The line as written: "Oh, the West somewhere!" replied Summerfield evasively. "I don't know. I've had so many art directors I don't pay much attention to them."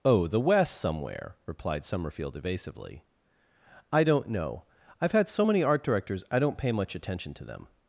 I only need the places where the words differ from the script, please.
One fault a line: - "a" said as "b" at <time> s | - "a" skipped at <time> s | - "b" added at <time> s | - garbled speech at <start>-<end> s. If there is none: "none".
none